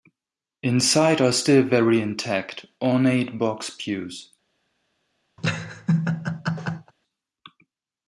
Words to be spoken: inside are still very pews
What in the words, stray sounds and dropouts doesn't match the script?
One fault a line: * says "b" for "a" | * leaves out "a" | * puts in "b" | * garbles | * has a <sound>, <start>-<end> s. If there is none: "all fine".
* puts in "intact ornate box"
* has a laugh, 5.4-6.9 s